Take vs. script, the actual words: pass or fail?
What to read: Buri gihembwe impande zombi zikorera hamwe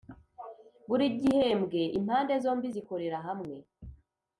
pass